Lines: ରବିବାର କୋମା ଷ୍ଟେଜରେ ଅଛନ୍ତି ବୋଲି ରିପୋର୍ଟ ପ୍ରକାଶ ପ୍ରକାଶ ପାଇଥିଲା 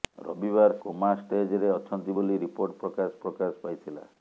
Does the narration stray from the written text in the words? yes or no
no